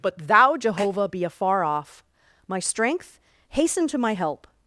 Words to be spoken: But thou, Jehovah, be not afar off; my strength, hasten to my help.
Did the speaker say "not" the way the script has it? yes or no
no